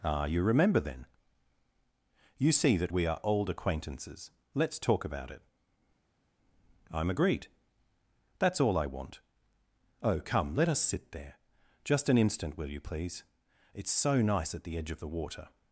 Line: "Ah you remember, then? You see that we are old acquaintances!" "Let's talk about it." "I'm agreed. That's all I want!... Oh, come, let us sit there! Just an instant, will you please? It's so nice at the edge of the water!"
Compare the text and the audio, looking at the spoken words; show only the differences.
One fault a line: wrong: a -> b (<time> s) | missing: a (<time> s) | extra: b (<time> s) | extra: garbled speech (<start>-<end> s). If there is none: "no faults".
no faults